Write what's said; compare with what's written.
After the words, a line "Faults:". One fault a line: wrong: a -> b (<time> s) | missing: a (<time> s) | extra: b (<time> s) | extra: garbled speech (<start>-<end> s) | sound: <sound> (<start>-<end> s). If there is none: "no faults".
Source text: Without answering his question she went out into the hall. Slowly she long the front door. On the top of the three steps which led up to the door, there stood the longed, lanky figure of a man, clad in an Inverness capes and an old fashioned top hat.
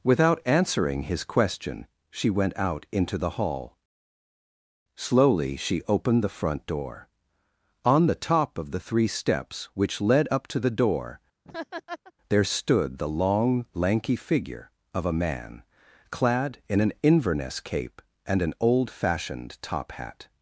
Without answering his question she went out into the hall. Slowly she opened the front door. On the top of the three steps which led up to the door, there stood the long, lanky figure of a man, clad in an Inverness cape and an old fashioned top hat.
Faults:
wrong: long -> opened (5.9 s)
sound: laugh (11.4-12.1 s)
wrong: longed -> long (13.1 s)
wrong: capes -> cape (17.6 s)